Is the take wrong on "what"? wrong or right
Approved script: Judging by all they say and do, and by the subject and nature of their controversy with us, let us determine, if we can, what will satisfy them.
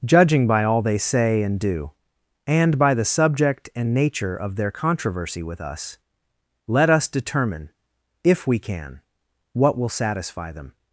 right